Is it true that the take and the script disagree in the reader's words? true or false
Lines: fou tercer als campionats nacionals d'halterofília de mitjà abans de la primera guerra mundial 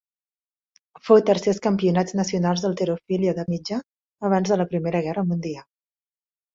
false